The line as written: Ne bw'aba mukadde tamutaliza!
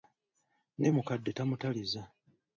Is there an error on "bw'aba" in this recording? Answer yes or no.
yes